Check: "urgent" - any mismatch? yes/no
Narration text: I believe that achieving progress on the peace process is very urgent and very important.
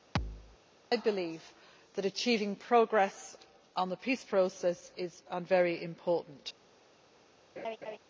yes